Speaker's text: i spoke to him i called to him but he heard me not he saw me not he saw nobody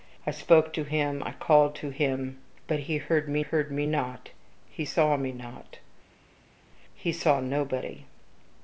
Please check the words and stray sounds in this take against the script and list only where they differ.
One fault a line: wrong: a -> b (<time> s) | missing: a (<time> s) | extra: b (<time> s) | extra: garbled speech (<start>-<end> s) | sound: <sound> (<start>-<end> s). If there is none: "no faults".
extra: heard me (3.4 s)